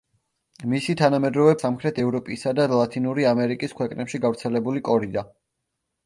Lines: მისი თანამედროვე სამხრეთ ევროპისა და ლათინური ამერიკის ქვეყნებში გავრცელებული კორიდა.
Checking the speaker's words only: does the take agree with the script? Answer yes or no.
yes